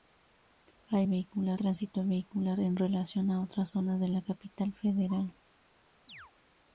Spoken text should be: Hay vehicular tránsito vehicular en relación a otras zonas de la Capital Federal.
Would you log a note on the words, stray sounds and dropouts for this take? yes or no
yes